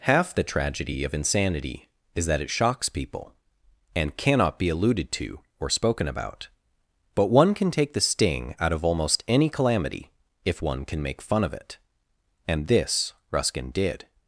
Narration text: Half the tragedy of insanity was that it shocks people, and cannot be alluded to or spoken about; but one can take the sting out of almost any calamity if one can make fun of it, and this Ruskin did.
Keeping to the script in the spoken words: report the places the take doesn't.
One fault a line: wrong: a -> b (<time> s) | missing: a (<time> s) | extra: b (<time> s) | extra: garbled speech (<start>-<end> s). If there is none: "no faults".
wrong: was -> is (2.1 s)